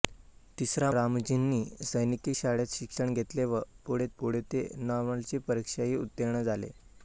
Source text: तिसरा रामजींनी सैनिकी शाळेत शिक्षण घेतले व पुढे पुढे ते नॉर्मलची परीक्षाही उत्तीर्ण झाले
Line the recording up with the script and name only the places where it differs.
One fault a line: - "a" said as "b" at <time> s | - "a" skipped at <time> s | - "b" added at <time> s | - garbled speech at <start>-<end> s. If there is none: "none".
none